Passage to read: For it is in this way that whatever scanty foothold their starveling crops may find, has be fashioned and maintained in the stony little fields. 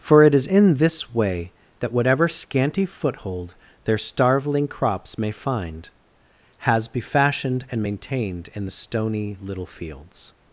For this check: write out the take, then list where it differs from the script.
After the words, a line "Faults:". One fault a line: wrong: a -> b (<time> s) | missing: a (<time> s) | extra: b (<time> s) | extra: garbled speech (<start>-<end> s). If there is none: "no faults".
For it is in this way that whatever scanty foothold their starveling crops may find, has be fashioned and maintained in the stony little fields.
Faults:
no faults